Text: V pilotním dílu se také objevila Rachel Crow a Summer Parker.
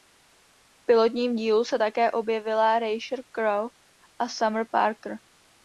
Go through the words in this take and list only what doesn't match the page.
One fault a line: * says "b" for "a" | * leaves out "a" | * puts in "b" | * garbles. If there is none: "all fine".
all fine